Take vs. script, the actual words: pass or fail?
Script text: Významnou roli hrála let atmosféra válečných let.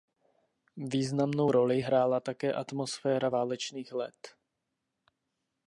fail